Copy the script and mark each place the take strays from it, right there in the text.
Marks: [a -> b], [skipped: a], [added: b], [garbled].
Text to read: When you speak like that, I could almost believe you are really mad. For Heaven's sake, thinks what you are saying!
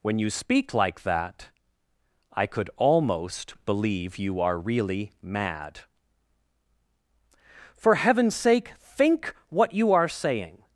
When you speak like that, I could almost believe you are really mad. For Heaven's sake, [thinks -> think] what you are saying!